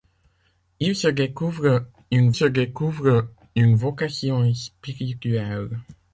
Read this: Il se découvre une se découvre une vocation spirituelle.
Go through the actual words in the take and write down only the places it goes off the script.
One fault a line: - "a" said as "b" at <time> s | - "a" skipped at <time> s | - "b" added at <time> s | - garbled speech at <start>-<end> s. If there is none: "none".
none